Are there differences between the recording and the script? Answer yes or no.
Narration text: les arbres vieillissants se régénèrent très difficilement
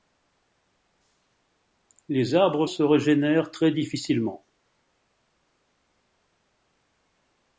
yes